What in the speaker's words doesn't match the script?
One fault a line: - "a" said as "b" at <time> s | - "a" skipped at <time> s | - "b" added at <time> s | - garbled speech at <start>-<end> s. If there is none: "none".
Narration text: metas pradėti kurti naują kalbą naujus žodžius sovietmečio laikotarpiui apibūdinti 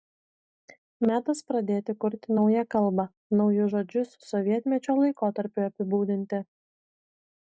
none